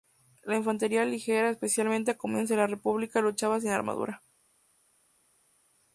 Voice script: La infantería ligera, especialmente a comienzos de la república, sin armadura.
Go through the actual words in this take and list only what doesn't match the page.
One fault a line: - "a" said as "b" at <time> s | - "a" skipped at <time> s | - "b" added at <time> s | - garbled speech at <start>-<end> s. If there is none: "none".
- "luchaba" added at 3.2 s